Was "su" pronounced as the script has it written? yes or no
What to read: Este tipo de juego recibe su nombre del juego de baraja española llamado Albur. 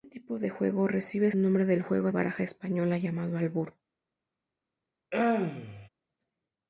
no